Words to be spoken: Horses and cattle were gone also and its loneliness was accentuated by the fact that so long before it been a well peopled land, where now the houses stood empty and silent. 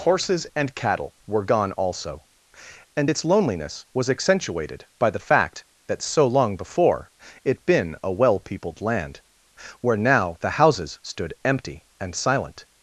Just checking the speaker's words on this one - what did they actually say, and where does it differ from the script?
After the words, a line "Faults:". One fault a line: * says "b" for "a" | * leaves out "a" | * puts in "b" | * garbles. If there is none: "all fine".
Horses and cattle were gone also and its loneliness was accentuated by the fact that so long before it been a well peopled land, where now the houses stood empty and silent.
Faults:
all fine